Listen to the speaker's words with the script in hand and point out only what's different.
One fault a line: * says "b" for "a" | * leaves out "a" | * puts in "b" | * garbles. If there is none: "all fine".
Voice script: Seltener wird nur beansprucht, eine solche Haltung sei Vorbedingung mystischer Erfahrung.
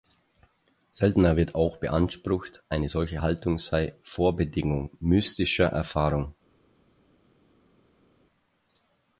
* says "auch" for "nur"